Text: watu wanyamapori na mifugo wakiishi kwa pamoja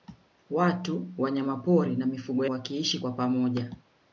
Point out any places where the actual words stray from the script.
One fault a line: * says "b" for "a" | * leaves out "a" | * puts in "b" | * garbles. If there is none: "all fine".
all fine